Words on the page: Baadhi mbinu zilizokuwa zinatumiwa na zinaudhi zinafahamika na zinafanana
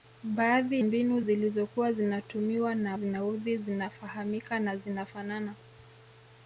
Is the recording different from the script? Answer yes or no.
no